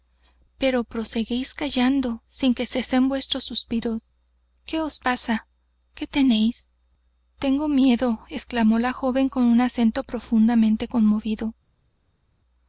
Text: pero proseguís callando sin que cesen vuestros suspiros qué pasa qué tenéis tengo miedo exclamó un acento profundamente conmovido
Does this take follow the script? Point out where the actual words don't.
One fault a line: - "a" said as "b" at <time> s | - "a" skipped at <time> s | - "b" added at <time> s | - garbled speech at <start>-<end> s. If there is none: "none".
- "os" added at 4.8 s
- "la joven con" added at 8.8 s